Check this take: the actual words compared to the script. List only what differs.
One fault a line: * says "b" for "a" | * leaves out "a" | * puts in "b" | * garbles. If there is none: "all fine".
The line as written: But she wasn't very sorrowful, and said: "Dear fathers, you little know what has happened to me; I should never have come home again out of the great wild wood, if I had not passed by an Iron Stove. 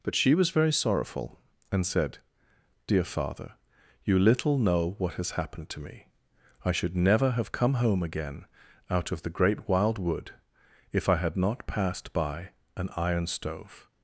* says "was" for "wasn't"
* says "father" for "fathers"